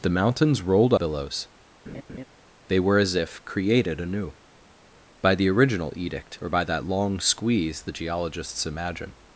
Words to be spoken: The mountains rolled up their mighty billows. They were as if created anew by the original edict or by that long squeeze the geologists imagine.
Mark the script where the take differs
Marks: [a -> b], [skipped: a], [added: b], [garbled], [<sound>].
The mountains rolled [skipped: up their mighty] billows. [laugh] They were as if created anew by the original edict or by that long squeeze the geologists imagine.